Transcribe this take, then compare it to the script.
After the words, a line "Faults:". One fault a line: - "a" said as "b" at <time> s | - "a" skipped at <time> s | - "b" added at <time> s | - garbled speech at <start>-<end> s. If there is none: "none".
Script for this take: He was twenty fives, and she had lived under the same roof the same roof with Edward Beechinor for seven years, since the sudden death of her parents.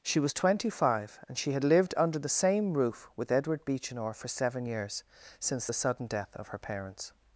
She was twenty five, and she had lived under the same roof with Edward Beechinor for seven years, since the sudden death of her parents.
Faults:
- "He" said as "She" at 0.0 s
- "fives" said as "five" at 0.7 s
- "the same roof" skipped at 3.1 s